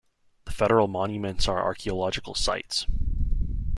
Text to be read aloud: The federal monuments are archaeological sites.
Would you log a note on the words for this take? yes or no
no